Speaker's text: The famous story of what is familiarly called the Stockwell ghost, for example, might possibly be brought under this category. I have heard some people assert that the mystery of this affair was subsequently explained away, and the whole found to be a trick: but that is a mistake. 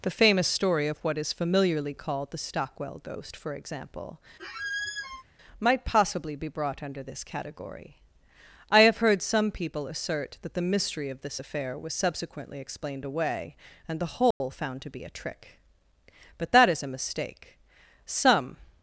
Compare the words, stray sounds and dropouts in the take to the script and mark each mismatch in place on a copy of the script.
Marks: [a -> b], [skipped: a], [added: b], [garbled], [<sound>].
The famous story of what is familiarly called the Stockwell ghost, for example, [squeak] might possibly be brought under this category. I have heard some people assert that the mystery of this affair was subsequently explained away, and the whole [dropout] found to be a trick: but that is a mistake. [added: Some]